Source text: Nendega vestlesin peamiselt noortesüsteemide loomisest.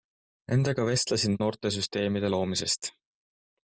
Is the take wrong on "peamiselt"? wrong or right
wrong